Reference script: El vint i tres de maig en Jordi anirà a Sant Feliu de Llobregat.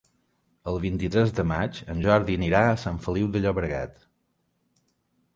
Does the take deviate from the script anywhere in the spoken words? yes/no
no